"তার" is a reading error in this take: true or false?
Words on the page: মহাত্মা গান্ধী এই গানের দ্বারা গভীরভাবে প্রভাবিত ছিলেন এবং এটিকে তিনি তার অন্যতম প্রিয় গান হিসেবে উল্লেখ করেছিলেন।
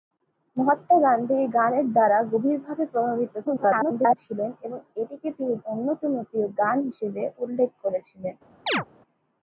true